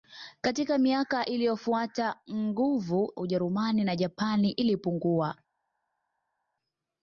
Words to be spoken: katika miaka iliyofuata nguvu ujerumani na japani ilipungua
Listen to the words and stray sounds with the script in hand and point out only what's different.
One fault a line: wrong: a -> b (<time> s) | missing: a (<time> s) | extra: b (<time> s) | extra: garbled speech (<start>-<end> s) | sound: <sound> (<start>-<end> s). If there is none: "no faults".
no faults